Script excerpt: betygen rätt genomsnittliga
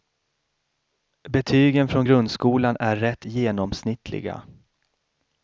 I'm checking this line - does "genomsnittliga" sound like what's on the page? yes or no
yes